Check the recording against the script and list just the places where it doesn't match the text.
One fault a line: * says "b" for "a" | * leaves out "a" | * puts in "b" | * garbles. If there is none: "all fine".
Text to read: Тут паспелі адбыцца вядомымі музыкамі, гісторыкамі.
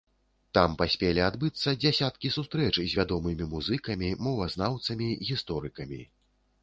* says "Там" for "Тут"
* puts in "дзясяткі сустрэч з"
* puts in "мовазнаўцамі"